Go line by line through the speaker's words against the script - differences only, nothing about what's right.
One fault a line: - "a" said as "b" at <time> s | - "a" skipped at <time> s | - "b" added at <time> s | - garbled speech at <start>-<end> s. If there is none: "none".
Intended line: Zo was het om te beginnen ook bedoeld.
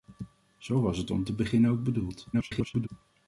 - garbled speech at 2.3-2.9 s